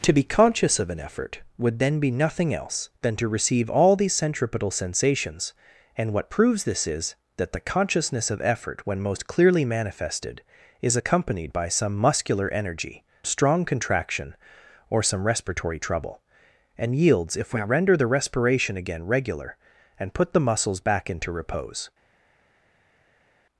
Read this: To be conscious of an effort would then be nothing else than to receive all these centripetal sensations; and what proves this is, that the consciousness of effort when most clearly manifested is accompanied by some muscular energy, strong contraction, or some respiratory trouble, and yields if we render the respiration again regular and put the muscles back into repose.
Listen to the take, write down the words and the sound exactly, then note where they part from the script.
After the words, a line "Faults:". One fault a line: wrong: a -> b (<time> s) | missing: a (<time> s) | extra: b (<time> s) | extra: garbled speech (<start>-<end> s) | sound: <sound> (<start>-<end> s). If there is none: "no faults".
To be conscious of an effort would then be nothing else than to receive all these centripetal sensations; and what proves this is, that the consciousness of effort when most clearly manifested is accompanied by some muscular energy, strong contraction, or some respiratory trouble, and yields if we render the respiration again regular and put the muscles back into repose.
Faults:
no faults